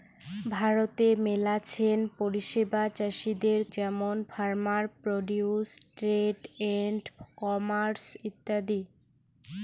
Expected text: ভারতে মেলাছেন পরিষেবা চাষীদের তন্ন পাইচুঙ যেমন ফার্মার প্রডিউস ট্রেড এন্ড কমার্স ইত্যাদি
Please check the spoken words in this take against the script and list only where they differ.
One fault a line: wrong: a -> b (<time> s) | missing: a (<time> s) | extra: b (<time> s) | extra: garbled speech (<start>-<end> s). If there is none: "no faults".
missing: তন্ন পাইচুঙ (3.6 s)